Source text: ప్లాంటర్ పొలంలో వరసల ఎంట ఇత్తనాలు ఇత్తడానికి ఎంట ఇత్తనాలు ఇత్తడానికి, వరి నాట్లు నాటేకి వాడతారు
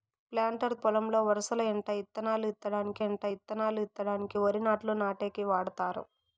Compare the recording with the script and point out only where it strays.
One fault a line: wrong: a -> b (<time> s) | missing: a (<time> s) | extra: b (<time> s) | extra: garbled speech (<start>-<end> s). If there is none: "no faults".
no faults